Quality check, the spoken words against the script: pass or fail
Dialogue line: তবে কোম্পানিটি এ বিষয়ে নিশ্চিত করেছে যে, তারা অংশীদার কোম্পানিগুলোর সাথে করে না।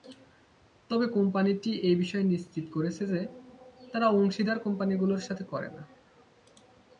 pass